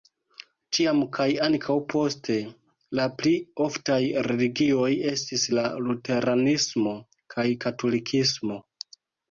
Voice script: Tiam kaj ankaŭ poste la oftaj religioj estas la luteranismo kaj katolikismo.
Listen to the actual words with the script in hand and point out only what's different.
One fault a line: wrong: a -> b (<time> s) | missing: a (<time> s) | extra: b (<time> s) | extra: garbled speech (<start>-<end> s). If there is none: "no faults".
extra: pli (3.2 s)
wrong: estas -> estis (5.1 s)